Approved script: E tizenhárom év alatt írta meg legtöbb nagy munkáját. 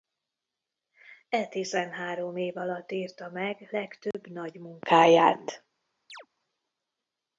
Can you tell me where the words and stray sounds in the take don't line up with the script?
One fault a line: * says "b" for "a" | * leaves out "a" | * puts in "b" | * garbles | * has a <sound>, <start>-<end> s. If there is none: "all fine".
* has a dropout, 4.1-4.1 s
* has a chirp, 6.1-6.3 s